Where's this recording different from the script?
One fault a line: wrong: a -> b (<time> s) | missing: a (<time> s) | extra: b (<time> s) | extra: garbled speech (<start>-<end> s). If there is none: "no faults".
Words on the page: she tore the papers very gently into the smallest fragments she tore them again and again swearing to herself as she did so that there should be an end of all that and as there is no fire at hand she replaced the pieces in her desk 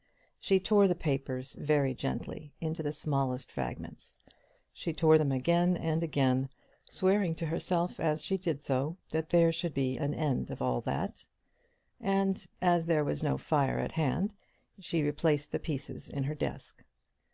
wrong: is -> was (13.1 s)